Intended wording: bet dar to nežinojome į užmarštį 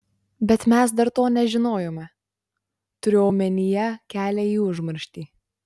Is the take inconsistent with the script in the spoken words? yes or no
yes